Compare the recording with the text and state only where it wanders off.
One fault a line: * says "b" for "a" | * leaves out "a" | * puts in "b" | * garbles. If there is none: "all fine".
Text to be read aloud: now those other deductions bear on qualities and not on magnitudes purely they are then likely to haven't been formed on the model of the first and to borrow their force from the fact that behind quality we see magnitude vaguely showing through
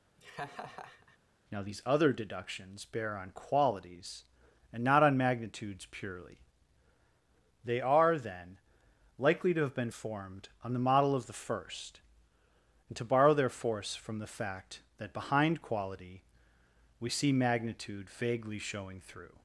* says "these" for "those"
* says "have" for "haven't"